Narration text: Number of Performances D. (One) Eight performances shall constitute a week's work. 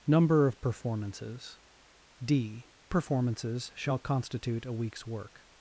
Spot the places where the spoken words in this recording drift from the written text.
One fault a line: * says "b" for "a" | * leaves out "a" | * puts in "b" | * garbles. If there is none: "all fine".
* leaves out "One Eight"